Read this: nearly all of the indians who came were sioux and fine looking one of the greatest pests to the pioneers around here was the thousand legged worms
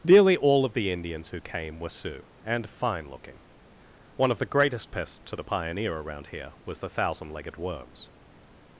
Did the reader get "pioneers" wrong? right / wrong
wrong